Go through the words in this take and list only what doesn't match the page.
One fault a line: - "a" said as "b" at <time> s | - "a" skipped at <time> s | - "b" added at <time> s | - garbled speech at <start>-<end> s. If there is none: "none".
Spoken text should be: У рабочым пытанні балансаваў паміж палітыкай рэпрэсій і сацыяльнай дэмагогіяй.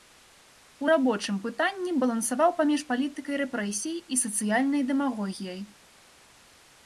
none